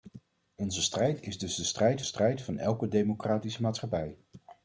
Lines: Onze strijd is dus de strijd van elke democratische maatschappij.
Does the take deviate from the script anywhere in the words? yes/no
yes